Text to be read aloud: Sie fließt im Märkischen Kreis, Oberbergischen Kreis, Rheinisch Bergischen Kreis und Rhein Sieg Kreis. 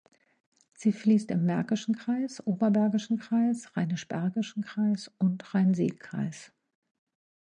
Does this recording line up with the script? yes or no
yes